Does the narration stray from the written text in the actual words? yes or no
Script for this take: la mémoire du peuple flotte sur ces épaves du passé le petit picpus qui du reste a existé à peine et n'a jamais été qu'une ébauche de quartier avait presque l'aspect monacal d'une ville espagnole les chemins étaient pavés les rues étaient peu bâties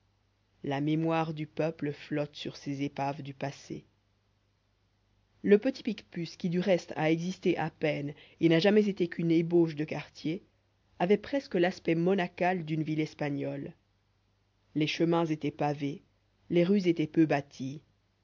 no